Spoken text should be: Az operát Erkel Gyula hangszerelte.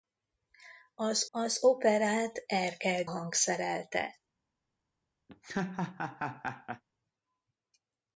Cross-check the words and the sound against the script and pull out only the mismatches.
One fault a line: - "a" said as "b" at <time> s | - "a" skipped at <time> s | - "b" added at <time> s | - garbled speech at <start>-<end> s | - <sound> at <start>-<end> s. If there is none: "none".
- "az" added at 1.3 s
- "Gyula" skipped at 3.0 s
- laugh at 5.3-6.8 s